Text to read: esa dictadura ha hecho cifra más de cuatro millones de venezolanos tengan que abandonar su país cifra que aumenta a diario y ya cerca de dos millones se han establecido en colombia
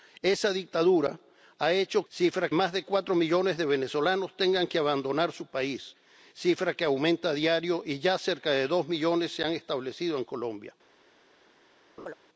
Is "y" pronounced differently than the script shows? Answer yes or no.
no